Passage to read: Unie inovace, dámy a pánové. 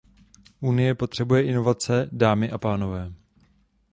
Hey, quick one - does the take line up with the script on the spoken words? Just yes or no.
no